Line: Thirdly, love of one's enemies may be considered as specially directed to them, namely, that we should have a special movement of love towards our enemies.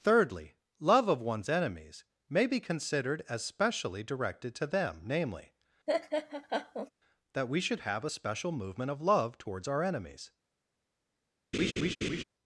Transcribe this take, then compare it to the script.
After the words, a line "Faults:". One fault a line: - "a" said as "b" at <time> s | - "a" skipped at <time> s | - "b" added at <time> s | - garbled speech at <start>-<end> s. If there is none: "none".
Thirdly, love of one's enemies may be considered as specially directed to them, namely, that we should have a special movement of love towards our enemies.
Faults:
none